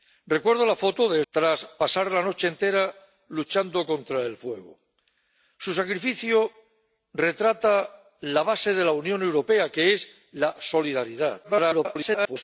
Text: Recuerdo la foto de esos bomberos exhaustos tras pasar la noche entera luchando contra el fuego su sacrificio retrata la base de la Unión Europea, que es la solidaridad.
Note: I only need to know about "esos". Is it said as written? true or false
false